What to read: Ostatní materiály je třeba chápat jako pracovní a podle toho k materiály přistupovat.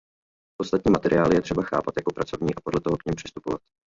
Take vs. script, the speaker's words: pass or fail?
fail